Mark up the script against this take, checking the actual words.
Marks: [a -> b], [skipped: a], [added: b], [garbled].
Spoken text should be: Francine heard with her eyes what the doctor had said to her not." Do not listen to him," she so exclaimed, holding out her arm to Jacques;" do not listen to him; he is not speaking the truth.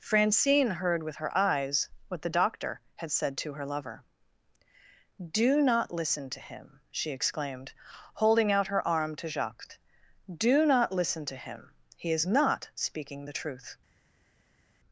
Francine heard with her eyes what the doctor had said to her [not." -> lover] Do not listen to him," she [skipped: so] exclaimed, holding out her arm to Jacques;" do not listen to him; he is not speaking the truth.